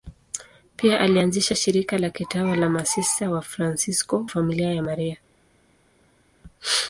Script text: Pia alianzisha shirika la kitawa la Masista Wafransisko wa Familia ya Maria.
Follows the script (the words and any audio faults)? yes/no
no